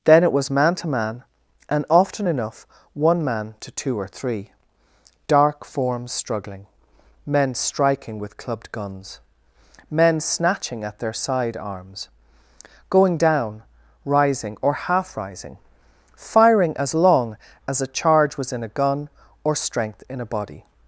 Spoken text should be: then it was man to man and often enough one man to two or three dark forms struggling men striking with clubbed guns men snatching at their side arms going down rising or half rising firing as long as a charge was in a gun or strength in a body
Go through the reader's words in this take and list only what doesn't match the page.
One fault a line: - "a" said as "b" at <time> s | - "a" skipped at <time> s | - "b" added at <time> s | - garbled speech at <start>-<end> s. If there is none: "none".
none